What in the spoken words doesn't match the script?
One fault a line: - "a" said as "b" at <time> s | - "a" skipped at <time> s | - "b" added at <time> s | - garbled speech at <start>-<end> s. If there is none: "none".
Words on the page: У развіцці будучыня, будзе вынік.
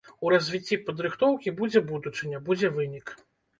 - "падрыхтоўкі будзе" added at 0.9 s